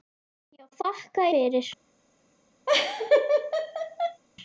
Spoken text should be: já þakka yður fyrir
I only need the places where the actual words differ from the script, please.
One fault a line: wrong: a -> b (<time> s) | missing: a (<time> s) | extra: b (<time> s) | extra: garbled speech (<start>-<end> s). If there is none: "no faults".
missing: yður (1.3 s)